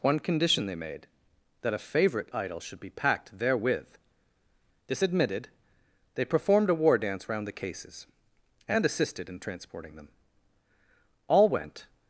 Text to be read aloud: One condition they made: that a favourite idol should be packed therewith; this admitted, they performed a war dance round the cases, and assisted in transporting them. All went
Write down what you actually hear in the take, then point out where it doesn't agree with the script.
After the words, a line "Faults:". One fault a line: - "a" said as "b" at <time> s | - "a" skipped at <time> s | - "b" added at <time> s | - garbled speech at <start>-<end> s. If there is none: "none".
One condition they made: that a favourite idol should be packed therewith; this admitted, they performed a war dance round the cases, and assisted in transporting them. All went
Faults:
none